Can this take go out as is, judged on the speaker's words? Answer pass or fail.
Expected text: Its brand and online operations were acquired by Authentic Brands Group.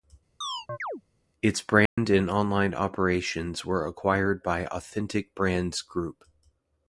pass